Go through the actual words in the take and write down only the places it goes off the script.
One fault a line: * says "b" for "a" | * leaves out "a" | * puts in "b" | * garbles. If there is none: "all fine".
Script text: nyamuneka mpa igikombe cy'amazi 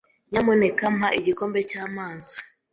all fine